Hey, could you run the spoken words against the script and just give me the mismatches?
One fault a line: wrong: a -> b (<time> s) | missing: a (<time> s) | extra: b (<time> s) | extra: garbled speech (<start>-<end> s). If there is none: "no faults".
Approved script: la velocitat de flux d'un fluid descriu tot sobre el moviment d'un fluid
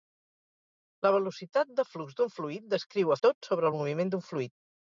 no faults